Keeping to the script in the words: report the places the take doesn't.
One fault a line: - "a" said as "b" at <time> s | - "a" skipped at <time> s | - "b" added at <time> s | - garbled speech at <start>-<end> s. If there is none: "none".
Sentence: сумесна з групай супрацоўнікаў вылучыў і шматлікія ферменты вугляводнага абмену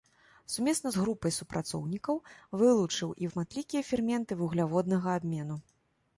none